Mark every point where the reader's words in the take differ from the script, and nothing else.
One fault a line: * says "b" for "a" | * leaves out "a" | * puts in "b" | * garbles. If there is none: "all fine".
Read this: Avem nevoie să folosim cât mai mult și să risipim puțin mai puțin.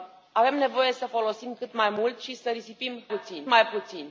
all fine